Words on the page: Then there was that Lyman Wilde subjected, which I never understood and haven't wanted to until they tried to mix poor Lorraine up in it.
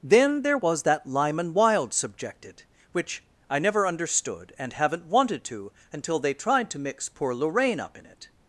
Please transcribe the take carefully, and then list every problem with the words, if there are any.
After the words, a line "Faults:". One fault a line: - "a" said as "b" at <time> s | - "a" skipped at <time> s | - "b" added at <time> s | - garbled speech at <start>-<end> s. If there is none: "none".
Then there was that Lyman Wilde subjected, which I never understood and haven't wanted to until they tried to mix poor Lorraine up in it.
Faults:
none